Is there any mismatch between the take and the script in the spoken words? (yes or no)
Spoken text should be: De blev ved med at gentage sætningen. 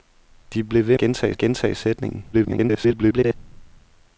yes